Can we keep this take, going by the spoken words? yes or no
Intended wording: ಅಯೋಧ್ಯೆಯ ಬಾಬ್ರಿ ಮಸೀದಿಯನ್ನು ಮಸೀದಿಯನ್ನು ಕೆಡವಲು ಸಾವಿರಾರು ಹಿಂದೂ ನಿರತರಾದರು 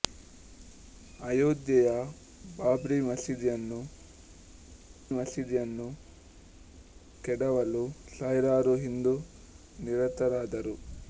yes